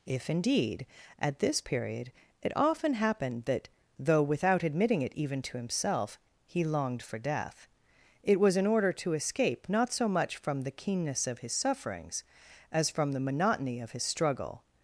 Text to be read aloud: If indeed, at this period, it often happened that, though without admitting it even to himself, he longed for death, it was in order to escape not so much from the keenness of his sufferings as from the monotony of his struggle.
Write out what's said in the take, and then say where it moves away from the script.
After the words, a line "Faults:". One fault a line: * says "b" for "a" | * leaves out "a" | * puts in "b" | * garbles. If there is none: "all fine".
If indeed, at this period, it often happened that, though without admitting it even to himself, he longed for death, it was in order to escape not so much from the keenness of his sufferings as from the monotony of his struggle.
Faults:
all fine